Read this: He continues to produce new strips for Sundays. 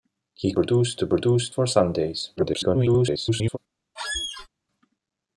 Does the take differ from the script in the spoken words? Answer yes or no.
yes